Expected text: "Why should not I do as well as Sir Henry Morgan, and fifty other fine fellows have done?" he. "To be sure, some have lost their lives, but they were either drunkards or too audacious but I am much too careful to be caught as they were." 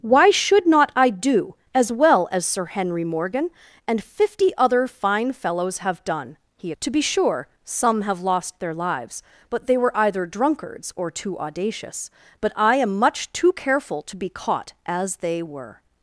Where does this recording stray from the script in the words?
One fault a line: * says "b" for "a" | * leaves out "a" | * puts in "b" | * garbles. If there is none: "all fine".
all fine